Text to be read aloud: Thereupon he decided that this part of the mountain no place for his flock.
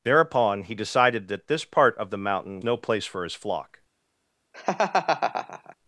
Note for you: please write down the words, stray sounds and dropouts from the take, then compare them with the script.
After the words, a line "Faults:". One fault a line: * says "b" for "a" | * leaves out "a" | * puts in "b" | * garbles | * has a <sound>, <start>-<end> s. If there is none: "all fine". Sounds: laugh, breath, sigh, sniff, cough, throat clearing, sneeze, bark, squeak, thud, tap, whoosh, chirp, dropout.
Thereupon he decided that this part of the mountain no place for his flock.
Faults:
* has a laugh, 4.5-5.8 s